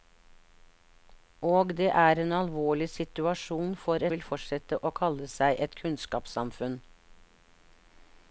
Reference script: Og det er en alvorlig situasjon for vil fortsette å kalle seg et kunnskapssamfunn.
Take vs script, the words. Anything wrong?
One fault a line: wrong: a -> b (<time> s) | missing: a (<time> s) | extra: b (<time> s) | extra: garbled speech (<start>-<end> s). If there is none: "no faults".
no faults